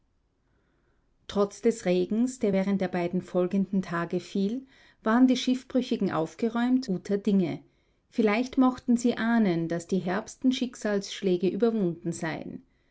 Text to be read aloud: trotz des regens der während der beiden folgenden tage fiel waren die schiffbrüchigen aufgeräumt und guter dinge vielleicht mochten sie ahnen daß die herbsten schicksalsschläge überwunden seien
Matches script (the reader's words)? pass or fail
fail